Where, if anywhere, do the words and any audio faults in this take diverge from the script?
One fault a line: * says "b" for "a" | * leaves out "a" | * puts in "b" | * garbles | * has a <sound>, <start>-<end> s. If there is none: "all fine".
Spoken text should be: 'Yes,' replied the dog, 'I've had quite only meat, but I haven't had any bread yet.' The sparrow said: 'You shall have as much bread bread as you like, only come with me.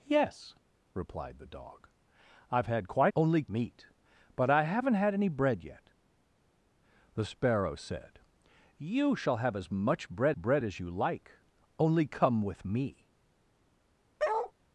* has a bark, 14.2-14.5 s